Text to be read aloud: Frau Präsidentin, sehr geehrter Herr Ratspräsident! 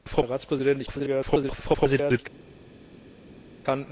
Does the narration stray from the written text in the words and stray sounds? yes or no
yes